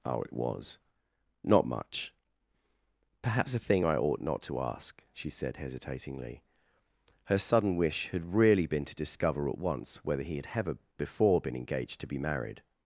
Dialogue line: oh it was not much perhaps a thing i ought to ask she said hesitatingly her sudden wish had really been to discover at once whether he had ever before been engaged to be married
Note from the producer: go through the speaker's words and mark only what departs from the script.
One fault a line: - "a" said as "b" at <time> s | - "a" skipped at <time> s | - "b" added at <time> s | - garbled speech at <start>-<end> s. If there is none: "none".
- "not" added at 4.2 s